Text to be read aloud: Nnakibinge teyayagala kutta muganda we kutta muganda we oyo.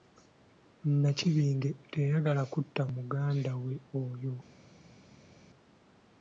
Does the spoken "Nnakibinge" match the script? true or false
true